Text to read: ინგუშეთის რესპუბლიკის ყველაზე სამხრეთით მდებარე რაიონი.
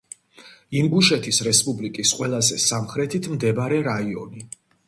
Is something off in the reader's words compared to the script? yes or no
no